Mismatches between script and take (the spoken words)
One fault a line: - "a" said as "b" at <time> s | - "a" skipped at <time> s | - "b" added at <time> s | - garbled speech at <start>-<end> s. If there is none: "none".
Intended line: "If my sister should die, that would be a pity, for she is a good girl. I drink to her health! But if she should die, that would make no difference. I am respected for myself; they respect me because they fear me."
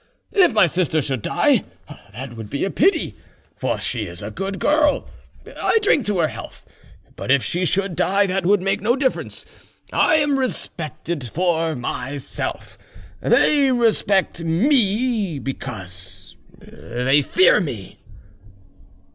none